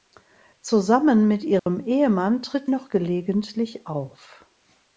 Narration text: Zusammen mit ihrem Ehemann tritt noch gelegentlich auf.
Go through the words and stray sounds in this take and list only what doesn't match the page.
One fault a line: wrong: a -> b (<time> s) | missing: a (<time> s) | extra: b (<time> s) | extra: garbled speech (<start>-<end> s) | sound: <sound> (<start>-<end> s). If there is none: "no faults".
sound: dropout (1.6-1.7 s)